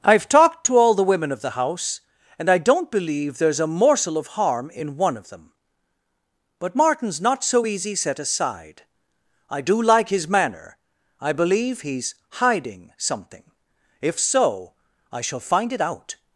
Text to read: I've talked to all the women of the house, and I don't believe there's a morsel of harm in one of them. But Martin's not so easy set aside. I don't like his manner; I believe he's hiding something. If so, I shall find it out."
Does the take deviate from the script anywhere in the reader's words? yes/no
yes